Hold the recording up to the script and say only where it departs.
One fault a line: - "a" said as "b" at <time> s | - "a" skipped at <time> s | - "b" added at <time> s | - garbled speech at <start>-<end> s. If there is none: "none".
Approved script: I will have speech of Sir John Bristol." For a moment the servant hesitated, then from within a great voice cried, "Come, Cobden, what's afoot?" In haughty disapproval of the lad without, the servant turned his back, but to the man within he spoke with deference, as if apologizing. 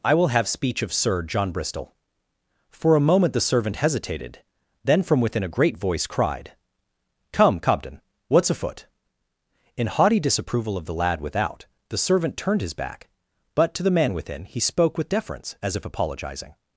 none